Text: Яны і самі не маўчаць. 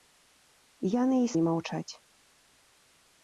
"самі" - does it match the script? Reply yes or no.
no